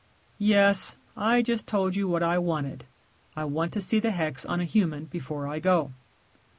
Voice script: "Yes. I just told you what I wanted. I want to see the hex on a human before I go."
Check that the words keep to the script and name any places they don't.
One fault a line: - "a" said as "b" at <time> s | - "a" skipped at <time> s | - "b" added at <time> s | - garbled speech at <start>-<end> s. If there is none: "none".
none